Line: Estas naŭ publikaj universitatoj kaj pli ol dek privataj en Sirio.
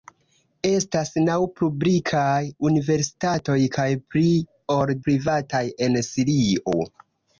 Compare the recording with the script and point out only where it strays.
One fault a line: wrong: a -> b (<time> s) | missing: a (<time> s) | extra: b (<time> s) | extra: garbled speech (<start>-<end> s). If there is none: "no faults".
missing: dek (5.0 s)